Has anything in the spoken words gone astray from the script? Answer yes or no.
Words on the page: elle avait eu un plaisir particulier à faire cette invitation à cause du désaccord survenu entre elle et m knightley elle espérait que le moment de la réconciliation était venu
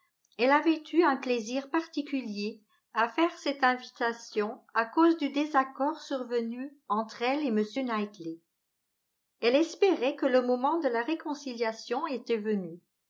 no